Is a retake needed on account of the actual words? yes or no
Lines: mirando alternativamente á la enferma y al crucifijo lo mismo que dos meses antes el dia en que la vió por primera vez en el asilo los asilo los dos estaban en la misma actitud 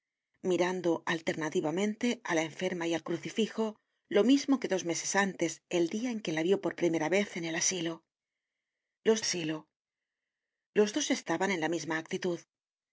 no